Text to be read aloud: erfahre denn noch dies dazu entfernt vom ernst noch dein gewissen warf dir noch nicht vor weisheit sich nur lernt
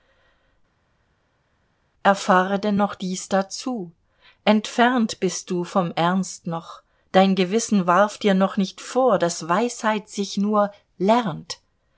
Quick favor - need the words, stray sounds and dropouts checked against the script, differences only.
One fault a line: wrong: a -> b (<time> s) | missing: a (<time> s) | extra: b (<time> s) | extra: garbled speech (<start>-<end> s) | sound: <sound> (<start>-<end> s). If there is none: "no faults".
extra: bist du (5.2 s)
extra: daß (9.2 s)